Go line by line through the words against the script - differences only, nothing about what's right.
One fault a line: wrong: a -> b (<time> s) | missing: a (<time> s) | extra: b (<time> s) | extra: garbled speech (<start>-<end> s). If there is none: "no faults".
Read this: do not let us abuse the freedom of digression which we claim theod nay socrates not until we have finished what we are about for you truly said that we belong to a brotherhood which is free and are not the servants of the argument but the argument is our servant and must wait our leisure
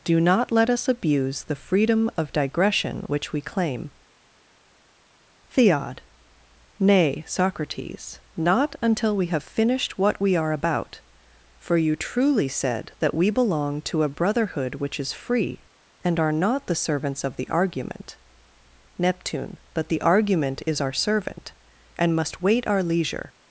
extra: neptune (19.0 s)